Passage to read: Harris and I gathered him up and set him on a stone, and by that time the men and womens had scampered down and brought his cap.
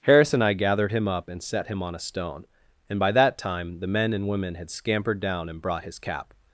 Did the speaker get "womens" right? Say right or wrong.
wrong